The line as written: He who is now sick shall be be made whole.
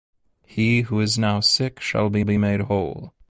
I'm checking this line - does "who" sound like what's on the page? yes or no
yes